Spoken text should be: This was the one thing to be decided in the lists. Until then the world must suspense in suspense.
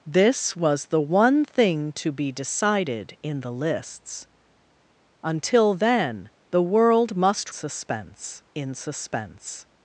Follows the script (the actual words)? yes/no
yes